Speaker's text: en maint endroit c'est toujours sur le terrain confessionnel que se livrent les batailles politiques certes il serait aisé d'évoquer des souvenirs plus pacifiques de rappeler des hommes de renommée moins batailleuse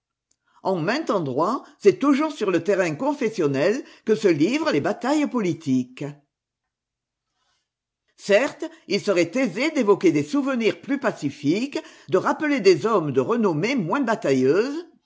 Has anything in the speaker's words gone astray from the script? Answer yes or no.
no